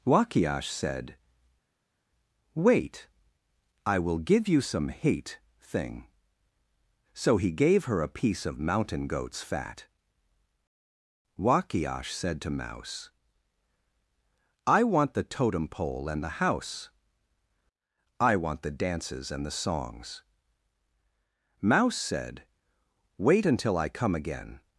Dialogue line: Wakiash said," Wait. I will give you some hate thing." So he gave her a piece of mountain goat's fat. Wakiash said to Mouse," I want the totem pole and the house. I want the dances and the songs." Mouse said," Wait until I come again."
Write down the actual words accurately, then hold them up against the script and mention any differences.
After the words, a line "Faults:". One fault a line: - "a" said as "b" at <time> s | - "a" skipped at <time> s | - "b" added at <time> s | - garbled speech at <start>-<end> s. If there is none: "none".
Wakiash said," Wait. I will give you some hate thing." So he gave her a piece of mountain goat's fat. Wakiash said to Mouse," I want the totem pole and the house. I want the dances and the songs." Mouse said," Wait until I come again."
Faults:
none